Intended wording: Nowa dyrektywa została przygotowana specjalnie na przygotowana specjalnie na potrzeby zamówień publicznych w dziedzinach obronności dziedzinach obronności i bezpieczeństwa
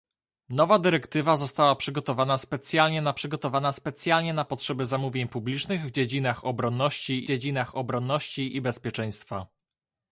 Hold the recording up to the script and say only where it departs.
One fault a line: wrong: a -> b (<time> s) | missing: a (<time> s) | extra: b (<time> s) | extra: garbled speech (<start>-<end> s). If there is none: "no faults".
no faults